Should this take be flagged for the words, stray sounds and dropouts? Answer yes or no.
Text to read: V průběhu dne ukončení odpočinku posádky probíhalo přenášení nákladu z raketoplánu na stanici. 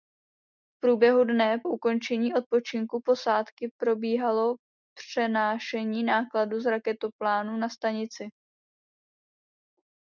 no